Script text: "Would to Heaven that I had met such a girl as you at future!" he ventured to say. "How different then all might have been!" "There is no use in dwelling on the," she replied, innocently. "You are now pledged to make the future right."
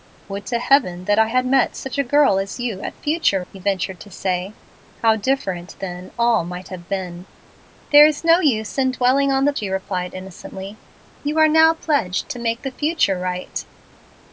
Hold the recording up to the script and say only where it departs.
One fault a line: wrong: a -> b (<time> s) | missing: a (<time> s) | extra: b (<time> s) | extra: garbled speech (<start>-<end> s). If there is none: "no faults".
no faults